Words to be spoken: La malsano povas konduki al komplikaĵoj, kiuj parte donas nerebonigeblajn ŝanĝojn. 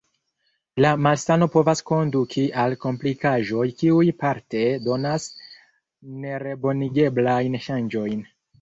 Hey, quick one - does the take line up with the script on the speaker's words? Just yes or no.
yes